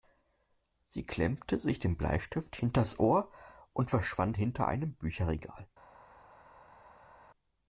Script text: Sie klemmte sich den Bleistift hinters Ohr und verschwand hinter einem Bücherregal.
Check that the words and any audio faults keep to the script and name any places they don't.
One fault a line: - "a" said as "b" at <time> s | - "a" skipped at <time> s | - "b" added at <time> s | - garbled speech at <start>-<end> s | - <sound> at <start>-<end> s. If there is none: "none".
none